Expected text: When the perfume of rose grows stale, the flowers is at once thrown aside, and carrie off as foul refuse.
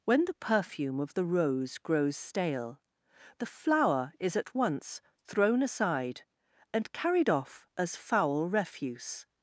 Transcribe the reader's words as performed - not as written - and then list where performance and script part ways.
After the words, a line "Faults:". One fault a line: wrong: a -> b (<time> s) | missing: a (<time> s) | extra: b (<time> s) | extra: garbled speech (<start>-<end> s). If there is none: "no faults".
When the perfume of the rose grows stale, the flower is at once thrown aside, and carried off as foul refuse.
Faults:
extra: the (1.1 s)
wrong: flowers -> flower (3.4 s)
wrong: carrie -> carried (6.9 s)